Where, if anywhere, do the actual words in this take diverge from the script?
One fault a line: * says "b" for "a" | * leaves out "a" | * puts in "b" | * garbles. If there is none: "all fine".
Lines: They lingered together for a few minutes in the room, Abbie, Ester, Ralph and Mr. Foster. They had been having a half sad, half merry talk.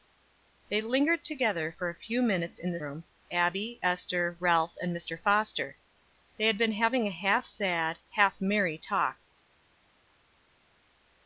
all fine